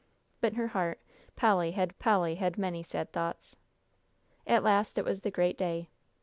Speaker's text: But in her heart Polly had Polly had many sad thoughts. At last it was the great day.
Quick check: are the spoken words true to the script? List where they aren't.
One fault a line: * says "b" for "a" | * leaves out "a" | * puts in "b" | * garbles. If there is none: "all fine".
all fine